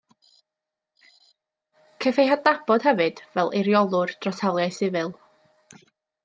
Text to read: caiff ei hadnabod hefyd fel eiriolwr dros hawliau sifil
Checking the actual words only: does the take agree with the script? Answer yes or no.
yes